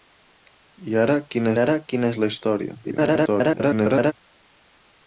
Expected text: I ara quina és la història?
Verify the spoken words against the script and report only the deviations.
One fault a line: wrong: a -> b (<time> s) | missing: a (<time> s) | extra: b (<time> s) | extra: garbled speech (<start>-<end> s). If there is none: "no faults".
extra: ara quina (1.6 s)
extra: garbled speech (2.8-4.1 s)